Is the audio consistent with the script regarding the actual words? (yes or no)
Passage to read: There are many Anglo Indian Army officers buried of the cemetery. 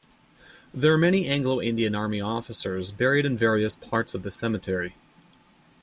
no